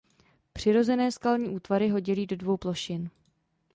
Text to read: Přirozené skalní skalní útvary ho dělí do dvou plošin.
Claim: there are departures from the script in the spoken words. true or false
true